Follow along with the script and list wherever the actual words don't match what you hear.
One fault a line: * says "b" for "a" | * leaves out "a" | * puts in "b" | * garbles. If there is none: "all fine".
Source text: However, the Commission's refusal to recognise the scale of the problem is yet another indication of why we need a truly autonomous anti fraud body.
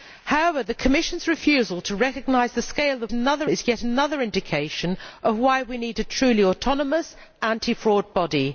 * says "another" for "problem"